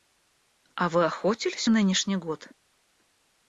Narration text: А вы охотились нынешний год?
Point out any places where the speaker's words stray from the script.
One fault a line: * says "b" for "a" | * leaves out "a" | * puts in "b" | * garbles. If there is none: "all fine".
all fine